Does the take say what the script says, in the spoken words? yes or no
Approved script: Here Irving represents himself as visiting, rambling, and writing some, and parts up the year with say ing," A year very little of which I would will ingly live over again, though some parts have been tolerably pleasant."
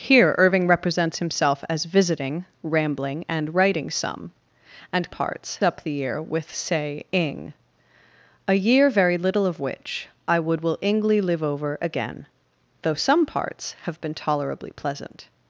yes